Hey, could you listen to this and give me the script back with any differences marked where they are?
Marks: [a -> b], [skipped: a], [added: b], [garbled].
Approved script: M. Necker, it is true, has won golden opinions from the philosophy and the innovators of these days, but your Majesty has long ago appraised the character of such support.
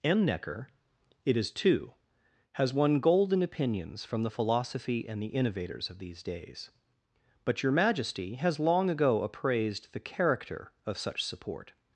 M. Necker, it is [true, -> two] has won golden opinions from the philosophy and the innovators of these days, but your Majesty has long ago appraised the character of such support.